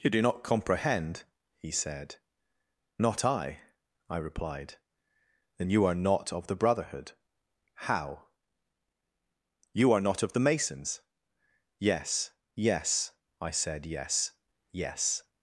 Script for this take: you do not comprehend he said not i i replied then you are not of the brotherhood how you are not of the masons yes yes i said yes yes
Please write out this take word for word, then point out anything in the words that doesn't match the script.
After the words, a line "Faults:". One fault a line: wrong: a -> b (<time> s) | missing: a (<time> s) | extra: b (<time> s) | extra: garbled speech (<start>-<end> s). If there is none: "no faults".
you do not comprehend he said not i i replied then you are not of the brotherhood how you are not of the masons yes yes i said yes yes
Faults:
no faults